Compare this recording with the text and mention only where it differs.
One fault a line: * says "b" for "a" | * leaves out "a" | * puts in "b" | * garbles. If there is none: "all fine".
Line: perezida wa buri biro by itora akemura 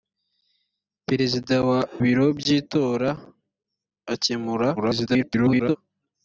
* leaves out "buri"
* garbles